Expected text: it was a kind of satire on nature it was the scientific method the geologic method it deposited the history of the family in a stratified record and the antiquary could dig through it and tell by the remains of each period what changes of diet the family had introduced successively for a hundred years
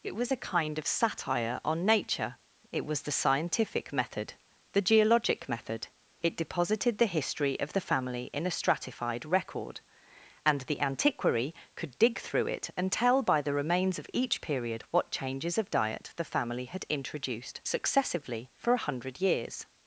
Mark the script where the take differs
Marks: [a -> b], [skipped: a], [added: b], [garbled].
it was a kind of satire on nature it was the scientific method the geologic method it deposited the history of the family in a stratified record and the antiquary could dig through it and tell by the remains of each period what changes of diet the family had introduced successively for a hundred years